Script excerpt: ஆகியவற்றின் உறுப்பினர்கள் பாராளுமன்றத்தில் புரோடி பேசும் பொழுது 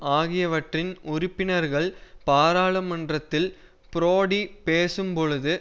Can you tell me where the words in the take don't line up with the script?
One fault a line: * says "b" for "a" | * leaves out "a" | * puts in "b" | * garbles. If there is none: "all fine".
all fine